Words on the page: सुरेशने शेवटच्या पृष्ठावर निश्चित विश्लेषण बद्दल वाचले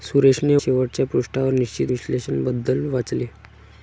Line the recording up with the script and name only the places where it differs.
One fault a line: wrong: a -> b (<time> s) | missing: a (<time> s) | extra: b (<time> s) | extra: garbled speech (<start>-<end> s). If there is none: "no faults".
no faults